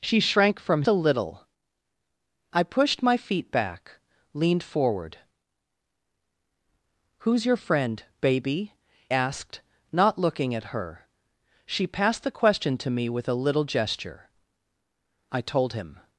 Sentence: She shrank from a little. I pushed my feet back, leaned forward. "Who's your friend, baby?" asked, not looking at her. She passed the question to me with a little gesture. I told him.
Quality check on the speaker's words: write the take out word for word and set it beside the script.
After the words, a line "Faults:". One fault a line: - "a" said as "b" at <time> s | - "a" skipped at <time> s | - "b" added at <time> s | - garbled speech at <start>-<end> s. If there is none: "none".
She shrank from a little. I pushed my feet back, leaned forward. "Who's your friend, baby?" asked, not looking at her. She passed the question to me with a little gesture. I told him.
Faults:
none